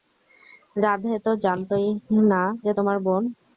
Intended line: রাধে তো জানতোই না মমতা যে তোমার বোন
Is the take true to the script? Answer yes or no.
no